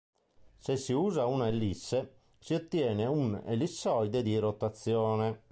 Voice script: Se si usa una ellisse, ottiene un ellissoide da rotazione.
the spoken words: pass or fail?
fail